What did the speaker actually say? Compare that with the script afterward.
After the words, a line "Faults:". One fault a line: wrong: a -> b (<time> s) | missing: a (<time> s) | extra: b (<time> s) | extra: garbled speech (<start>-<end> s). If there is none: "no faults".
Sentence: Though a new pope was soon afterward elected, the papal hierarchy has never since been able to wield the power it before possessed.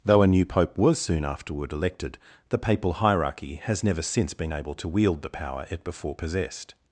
Though a new pope was soon afterward elected, the papal hierarchy has never since been able to wield the power it before possessed.
Faults:
no faults